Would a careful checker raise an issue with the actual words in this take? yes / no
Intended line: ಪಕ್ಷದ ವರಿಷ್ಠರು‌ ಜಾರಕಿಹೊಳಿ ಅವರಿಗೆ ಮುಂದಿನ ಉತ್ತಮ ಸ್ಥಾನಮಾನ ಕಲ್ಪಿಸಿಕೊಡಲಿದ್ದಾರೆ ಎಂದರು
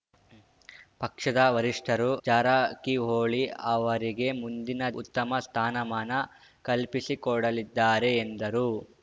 no